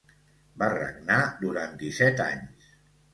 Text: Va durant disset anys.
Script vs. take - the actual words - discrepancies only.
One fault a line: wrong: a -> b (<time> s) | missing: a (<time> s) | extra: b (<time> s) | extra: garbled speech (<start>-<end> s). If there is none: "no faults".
extra: regnar (0.7 s)